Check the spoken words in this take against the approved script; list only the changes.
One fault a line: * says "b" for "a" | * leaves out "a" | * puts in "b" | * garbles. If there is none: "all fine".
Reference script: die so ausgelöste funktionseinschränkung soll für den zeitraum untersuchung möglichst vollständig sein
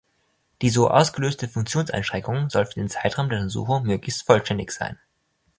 * puts in "der"